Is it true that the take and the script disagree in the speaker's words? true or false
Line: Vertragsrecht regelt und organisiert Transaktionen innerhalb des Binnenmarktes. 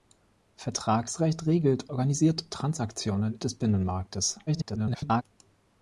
true